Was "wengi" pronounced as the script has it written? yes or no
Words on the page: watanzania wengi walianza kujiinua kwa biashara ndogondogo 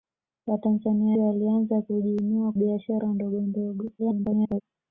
no